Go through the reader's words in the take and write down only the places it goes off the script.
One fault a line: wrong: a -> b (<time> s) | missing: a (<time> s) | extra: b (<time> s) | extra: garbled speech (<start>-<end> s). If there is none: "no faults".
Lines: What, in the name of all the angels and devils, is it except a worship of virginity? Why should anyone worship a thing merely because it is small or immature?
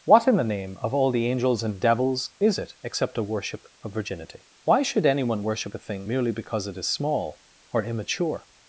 no faults